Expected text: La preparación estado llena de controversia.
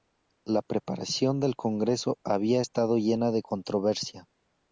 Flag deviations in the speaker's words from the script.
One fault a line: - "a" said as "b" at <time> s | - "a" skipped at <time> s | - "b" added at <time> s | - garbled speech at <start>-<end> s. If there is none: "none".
- "del congreso había" added at 1.4 s